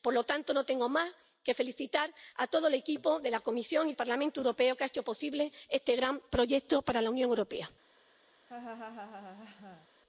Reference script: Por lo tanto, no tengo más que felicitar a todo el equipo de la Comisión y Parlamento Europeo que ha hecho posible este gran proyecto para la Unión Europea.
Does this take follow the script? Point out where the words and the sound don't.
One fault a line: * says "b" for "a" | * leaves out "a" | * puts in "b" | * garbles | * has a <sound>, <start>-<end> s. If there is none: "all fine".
* has a laugh, 8.5-9.9 s